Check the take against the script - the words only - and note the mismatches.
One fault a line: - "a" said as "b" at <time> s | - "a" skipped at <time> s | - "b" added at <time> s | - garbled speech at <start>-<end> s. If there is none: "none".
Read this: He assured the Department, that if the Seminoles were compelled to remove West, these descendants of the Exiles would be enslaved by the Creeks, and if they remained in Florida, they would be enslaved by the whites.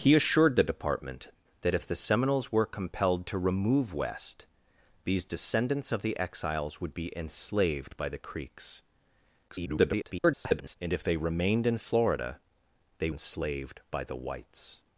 - garbled speech at 9.5-10.8 s
- "would be" skipped at 13.1 s